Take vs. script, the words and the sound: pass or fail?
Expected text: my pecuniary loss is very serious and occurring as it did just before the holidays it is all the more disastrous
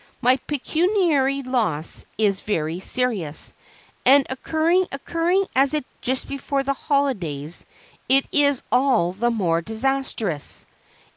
fail